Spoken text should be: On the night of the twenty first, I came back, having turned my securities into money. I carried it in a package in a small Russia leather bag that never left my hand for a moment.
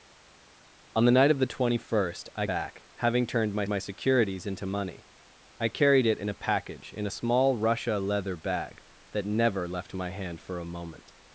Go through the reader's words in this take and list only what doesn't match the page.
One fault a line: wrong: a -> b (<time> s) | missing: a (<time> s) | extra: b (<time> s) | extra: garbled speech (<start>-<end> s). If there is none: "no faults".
missing: came (2.4 s)
extra: my (3.7 s)